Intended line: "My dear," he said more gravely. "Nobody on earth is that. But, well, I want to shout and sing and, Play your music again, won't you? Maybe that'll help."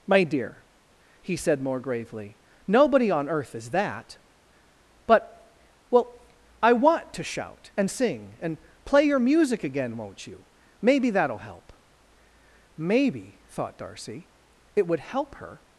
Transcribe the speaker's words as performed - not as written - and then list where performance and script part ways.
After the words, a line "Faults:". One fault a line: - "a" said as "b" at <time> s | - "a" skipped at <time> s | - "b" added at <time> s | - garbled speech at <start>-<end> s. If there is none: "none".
"My dear," he said more gravely. "Nobody on earth is that. But, well, I want to shout and sing and, Play your music again, won't you? Maybe that'll help." Maybe, thought Darcy, it would help her
Faults:
- "Maybe thought Darcy it would help her" added at 12.8 s